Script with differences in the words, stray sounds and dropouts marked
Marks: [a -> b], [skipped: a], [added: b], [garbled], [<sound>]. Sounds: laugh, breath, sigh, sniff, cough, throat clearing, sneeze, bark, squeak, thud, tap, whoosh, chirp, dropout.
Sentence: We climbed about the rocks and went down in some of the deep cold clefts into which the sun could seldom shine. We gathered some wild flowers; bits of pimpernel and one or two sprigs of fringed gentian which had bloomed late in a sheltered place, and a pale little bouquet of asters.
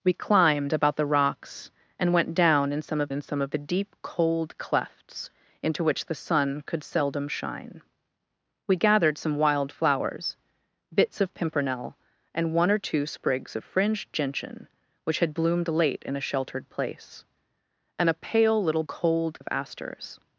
We climbed about the rocks and went down in some of [added: in some of] the deep cold clefts into which the sun could seldom shine. We gathered some wild flowers; bits of pimpernel and one or two sprigs of fringed gentian which had bloomed late in a sheltered place, and a pale little [bouquet -> cold] of asters.